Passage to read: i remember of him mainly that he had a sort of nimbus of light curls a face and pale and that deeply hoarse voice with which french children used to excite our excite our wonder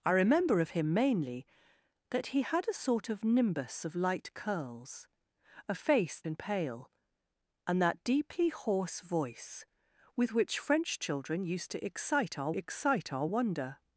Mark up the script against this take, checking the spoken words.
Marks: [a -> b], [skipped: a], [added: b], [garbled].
i remember of him mainly that he had a sort of nimbus of light curls a face and pale and that deeply hoarse voice with which french children used to excite our excite our wonder